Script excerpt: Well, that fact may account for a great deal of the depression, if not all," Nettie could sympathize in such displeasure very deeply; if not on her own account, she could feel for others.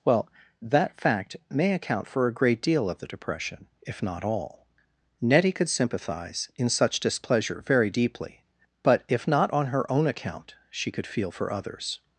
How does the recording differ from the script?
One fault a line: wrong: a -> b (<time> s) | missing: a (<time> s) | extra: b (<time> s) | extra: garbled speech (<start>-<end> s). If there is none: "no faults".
extra: but (8.8 s)